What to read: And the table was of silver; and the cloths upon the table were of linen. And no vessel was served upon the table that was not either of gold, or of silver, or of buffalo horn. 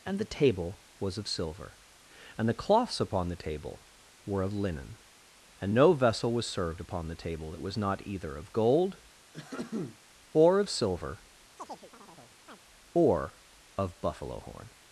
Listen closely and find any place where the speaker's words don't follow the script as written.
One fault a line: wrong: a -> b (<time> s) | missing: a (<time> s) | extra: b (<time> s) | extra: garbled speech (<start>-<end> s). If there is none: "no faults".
no faults